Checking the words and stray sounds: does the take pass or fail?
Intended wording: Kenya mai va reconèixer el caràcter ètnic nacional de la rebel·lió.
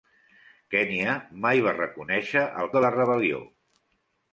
fail